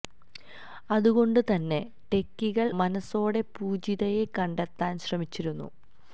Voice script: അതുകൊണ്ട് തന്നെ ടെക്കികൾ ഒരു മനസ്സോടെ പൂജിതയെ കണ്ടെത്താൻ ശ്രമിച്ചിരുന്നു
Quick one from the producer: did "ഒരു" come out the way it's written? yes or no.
no